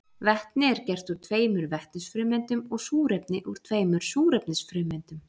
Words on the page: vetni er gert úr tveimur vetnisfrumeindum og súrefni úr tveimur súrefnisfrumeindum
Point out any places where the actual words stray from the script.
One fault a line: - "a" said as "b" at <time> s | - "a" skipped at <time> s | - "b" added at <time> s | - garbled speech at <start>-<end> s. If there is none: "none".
none